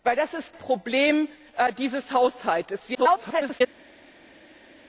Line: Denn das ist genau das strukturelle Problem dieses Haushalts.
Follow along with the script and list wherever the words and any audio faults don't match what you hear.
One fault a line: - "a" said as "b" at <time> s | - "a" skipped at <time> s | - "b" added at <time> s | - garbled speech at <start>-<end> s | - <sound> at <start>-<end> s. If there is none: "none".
- "genau das strukturelle" skipped at 0.5 s
- garbled speech at 2.9-3.6 s